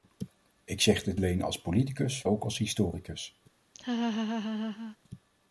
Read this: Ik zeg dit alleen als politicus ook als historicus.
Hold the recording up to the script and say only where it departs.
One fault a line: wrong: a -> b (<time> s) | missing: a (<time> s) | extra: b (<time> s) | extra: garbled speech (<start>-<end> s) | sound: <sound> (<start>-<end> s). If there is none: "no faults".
sound: laugh (3.7-5.0 s)